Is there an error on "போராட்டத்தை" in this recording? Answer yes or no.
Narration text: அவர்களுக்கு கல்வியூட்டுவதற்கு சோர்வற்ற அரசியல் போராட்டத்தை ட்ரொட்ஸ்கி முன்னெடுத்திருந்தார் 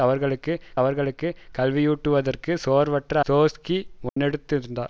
yes